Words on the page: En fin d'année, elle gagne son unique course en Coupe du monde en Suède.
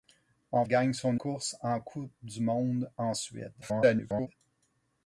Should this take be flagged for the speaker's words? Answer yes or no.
yes